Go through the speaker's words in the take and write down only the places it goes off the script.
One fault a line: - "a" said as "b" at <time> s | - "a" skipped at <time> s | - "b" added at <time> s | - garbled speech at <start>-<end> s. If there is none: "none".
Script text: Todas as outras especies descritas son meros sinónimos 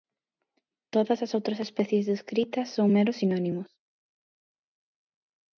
none